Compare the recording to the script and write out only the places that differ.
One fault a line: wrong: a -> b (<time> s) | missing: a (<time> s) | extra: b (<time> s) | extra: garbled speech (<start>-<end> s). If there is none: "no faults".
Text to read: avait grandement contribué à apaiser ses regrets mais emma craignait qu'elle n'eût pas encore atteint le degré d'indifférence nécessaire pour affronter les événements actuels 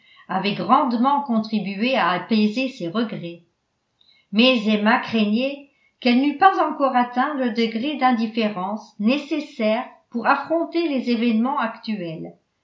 no faults